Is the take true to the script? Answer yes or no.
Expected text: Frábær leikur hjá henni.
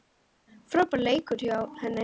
yes